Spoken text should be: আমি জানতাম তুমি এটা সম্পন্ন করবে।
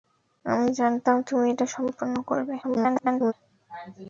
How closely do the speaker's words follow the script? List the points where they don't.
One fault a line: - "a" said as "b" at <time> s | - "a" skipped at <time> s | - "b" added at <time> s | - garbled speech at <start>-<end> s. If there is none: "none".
- garbled speech at 2.6-3.3 s